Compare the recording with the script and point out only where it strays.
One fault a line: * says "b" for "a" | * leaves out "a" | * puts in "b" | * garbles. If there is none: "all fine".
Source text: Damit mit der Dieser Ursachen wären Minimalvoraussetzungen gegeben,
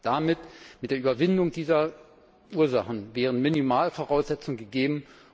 * puts in "Überwindung"